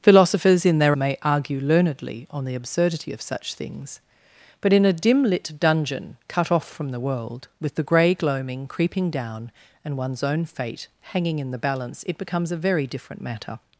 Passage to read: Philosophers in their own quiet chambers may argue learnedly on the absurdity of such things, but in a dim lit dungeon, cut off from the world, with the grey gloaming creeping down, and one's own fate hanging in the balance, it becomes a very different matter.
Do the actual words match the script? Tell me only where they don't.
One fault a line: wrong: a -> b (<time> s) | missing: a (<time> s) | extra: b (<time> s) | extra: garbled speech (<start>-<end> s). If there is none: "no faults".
missing: own quiet chambers (1.0 s)